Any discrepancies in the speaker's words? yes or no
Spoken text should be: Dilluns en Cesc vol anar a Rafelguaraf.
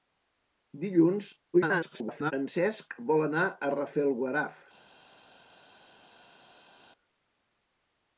yes